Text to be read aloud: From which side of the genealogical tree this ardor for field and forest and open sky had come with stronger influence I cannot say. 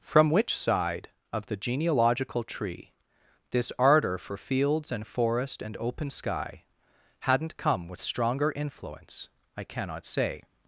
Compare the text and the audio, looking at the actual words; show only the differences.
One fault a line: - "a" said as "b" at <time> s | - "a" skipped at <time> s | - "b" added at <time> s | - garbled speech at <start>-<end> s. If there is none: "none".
- "field" said as "fields" at 4.3 s
- "had" said as "hadn't" at 7.2 s